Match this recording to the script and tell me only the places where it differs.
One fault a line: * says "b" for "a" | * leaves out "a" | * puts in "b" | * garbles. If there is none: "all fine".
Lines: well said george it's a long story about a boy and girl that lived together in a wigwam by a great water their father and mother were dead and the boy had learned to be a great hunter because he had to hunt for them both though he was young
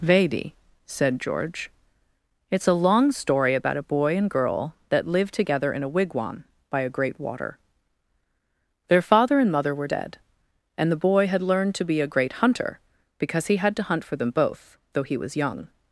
* says "vedi" for "well"